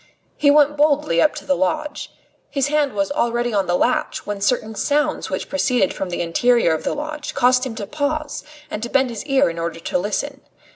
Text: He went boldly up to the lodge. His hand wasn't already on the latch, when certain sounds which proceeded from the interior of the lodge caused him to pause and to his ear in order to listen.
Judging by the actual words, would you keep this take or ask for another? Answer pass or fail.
fail